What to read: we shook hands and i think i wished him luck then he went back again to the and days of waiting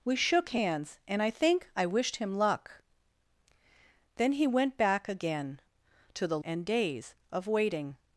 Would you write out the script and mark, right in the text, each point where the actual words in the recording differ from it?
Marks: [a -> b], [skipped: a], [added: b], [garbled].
we shook hands and i think i wished him luck then he went back again to the and days of waiting